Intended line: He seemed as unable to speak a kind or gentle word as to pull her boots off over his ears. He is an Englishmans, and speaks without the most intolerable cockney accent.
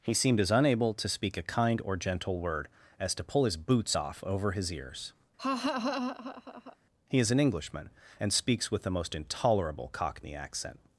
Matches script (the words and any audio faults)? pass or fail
fail